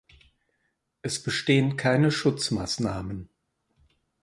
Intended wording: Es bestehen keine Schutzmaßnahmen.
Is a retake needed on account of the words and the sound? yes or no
no